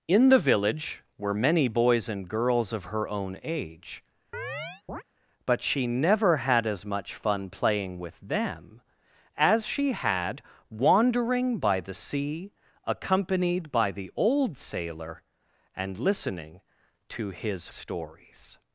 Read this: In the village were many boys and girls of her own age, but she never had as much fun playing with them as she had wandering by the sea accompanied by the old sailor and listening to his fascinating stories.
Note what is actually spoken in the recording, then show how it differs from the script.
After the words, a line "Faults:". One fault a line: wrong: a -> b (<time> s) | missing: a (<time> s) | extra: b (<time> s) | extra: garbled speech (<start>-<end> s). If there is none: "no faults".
In the village were many boys and girls of her own age, but she never had as much fun playing with them as she had wandering by the sea accompanied by the old sailor and listening to his stories.
Faults:
missing: fascinating (17.7 s)